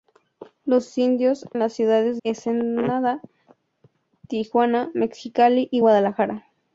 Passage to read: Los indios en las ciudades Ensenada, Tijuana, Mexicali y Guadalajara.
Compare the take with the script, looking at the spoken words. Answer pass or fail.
pass